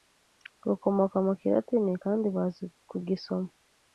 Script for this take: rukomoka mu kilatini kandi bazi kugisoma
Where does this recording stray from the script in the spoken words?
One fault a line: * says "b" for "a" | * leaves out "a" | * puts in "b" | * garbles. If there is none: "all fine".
all fine